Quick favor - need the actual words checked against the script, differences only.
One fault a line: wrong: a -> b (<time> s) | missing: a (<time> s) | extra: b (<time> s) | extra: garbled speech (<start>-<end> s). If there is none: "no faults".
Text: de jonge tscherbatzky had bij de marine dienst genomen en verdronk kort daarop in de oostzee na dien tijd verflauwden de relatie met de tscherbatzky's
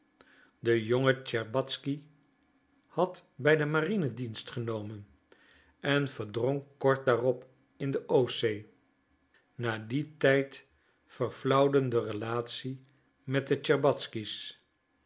no faults